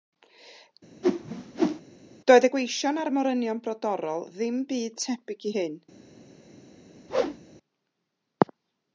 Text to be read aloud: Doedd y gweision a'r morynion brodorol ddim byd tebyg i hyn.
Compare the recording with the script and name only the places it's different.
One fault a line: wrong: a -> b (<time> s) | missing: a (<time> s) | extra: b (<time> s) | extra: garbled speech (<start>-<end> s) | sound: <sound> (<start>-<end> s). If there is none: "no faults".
sound: whoosh (1.0-1.8 s)
sound: whoosh (7.1-7.4 s)